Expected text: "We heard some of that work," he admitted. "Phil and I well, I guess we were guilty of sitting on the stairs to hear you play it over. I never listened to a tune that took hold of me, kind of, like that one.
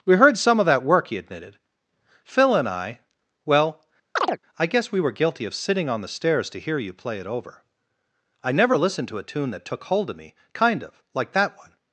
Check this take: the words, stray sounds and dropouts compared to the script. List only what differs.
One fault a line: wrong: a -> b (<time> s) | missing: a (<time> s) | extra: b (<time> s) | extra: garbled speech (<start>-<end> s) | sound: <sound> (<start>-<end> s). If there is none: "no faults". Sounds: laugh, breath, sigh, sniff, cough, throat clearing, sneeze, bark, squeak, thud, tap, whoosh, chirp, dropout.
sound: chirp (4.2-4.4 s)